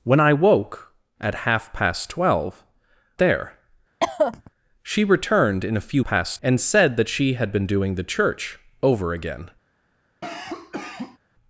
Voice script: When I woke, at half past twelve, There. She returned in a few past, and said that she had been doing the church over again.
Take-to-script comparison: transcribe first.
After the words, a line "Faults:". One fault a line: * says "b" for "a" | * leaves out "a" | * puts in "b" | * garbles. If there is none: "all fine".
When I woke, at half past twelve, There. She returned in a few past, and said that she had been doing the church over again.
Faults:
all fine